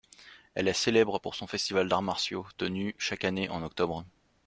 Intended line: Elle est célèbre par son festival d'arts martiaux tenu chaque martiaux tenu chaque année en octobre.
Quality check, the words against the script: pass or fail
fail